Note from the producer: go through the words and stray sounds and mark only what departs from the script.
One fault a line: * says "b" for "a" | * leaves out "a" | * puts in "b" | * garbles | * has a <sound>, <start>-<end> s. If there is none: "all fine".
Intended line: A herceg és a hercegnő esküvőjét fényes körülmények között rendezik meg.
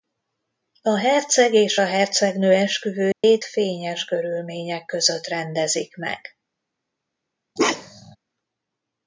* has a dropout, 3.1-3.2 s
* has a bark, 7.6-8.2 s